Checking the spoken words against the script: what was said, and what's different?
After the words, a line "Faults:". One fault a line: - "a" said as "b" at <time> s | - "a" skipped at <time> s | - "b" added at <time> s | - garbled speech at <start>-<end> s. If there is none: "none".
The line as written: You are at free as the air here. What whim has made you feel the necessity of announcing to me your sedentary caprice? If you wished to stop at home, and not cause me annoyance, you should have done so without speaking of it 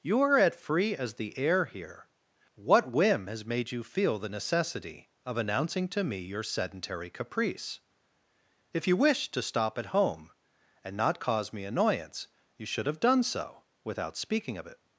You are at free as the air here. What whim has made you feel the necessity of announcing to me your sedentary caprice? If you wished to stop at home, and not cause me annoyance, you should have done so without speaking of it
Faults:
none